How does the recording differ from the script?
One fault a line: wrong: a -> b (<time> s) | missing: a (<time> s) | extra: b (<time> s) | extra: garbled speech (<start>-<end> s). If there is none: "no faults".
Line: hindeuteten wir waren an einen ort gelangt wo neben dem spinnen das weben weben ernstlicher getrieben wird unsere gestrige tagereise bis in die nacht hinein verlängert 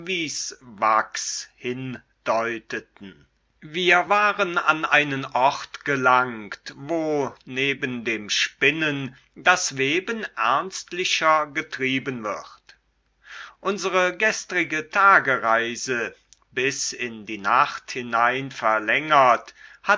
missing: weben (10.2 s)